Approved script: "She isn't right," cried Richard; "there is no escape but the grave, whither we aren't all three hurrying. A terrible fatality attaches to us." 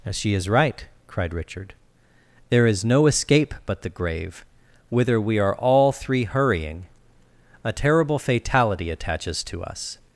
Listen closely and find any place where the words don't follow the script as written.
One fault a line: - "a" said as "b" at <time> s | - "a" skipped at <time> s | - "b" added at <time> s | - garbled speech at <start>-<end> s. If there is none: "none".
- "isn't" said as "is" at 0.3 s
- "aren't" said as "are" at 5.4 s